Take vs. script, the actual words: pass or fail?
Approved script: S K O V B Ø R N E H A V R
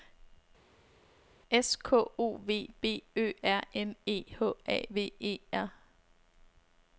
fail